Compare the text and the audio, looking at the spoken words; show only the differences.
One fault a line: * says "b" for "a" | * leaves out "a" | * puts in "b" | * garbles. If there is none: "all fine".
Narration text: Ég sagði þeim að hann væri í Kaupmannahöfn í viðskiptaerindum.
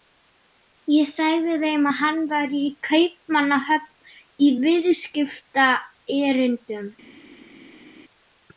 all fine